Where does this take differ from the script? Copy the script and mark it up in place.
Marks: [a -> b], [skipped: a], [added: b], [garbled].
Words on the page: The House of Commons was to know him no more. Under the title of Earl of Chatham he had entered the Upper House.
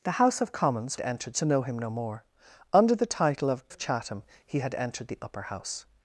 The House of Commons [was -> entered] to know him no more. Under the title of [skipped: Earl] of Chatham he had entered the Upper House.